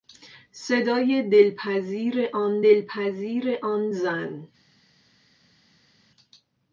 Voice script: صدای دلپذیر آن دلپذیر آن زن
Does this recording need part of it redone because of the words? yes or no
no